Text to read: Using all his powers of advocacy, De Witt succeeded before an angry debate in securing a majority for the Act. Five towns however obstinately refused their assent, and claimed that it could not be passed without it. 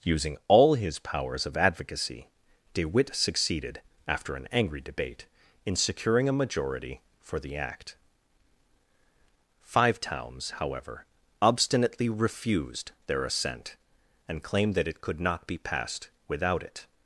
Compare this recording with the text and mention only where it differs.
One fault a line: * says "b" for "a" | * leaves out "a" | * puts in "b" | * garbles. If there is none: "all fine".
* says "after" for "before"